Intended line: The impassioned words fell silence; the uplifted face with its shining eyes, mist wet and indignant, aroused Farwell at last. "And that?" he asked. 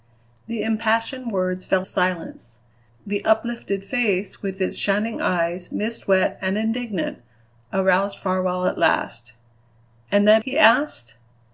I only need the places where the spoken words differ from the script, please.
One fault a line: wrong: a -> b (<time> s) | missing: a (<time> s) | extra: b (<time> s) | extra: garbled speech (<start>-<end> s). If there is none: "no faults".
no faults